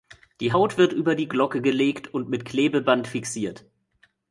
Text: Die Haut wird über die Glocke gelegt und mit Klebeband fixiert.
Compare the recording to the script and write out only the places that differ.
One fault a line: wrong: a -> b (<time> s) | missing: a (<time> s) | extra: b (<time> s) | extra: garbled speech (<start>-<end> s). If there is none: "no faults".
no faults